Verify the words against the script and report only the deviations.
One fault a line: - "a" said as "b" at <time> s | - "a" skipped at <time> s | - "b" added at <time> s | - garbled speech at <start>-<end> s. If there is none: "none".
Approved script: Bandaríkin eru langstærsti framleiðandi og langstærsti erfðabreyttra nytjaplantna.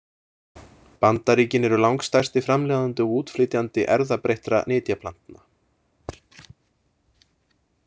- "langstærsti" said as "útflytjandi" at 3.2 s